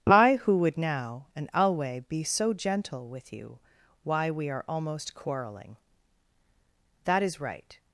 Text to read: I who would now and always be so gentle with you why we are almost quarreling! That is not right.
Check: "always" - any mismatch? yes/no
yes